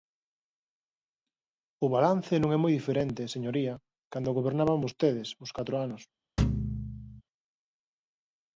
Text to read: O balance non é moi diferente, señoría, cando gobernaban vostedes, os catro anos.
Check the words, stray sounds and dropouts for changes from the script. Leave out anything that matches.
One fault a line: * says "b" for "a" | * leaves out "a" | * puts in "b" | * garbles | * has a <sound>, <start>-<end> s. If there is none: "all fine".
* has a thud, 6.4-7.2 s